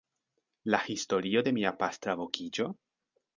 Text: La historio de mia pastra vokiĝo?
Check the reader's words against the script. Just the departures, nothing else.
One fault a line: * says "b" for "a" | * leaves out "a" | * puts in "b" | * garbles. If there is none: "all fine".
all fine